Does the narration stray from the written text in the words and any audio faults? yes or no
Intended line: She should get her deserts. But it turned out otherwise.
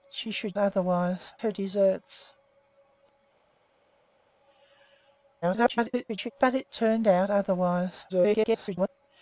yes